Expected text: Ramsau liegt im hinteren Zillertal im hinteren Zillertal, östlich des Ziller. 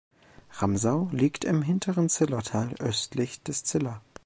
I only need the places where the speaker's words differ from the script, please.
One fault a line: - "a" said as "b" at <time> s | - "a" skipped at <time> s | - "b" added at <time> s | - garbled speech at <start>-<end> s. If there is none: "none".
- "im hinteren Zillertal" skipped at 2.7 s